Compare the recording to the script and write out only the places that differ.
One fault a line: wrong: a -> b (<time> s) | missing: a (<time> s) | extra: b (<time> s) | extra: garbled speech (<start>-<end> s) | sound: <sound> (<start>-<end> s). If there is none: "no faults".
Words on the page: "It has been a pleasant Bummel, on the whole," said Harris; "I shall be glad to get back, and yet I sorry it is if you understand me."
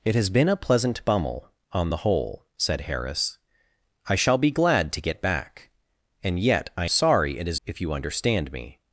no faults